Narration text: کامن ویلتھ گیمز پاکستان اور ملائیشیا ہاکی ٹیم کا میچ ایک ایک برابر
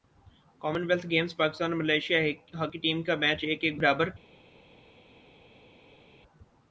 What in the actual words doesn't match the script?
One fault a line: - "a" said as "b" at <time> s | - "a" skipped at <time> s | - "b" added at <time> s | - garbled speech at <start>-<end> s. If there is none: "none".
none